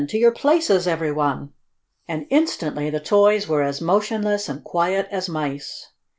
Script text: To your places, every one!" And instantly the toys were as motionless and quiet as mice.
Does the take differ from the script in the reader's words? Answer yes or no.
no